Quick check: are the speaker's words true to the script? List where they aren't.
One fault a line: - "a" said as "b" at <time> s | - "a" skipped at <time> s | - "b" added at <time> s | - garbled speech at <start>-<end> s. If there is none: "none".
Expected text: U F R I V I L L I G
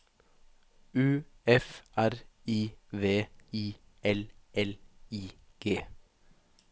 none